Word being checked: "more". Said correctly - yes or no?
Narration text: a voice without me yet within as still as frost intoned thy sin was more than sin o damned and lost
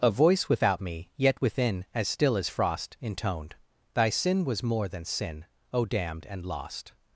yes